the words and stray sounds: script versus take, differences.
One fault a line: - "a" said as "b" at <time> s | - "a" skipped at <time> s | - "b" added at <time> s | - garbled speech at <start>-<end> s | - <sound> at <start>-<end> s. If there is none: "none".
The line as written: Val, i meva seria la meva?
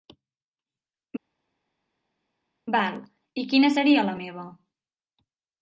- "meva" said as "quina" at 3.5 s